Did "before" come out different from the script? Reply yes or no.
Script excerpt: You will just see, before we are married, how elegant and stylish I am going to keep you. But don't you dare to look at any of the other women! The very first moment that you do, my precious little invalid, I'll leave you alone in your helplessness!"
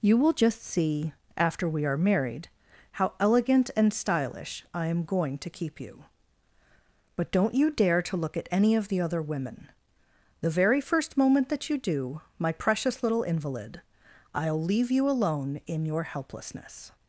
yes